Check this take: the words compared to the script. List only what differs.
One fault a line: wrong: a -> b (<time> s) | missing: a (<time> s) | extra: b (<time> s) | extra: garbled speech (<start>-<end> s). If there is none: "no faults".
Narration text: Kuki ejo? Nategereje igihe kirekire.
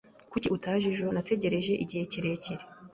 extra: utaje (0.6 s)